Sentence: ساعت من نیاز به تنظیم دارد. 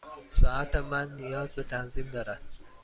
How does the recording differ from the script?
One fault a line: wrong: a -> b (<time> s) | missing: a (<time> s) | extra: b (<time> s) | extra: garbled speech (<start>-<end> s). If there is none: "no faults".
no faults